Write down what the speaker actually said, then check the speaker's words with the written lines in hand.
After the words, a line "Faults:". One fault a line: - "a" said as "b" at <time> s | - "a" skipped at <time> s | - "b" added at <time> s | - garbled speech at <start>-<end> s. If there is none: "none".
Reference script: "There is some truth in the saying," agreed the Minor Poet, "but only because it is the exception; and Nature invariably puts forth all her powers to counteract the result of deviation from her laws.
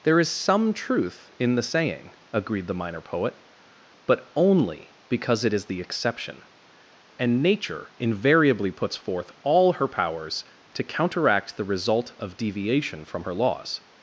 "There is some truth in the saying," agreed the Minor Poet, "but only because it is the exception; and Nature invariably puts forth all her powers to counteract the result of deviation from her laws.
Faults:
none